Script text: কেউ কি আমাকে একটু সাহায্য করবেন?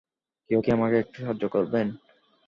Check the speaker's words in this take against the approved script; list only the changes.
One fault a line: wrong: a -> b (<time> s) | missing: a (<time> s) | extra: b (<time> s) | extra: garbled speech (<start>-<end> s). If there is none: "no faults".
no faults